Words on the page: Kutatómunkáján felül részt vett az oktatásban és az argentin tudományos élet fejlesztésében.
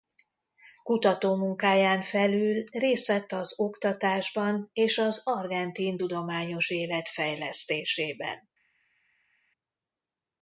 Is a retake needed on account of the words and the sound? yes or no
no